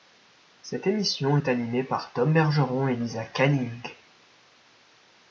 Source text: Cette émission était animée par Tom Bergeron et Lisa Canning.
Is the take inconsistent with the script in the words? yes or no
yes